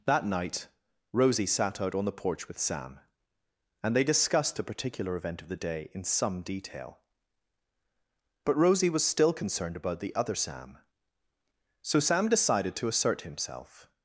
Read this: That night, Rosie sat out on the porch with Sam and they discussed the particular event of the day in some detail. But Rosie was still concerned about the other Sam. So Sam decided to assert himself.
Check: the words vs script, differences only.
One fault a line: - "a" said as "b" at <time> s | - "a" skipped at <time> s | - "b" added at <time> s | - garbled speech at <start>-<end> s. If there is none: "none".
none